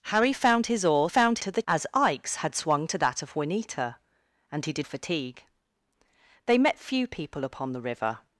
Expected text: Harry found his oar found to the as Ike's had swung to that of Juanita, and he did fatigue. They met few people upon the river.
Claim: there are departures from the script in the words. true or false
false